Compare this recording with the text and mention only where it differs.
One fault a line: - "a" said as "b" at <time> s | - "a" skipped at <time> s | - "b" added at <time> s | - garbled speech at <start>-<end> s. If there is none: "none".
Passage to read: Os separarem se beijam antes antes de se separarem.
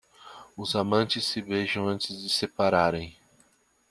- "separarem" said as "amantes" at 0.8 s
- "antes" skipped at 2.2 s